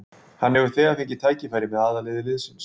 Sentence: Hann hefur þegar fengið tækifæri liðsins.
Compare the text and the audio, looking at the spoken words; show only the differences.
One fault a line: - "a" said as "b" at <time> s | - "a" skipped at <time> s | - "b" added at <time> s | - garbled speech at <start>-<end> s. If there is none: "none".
- "með aðalliði" added at 1.7 s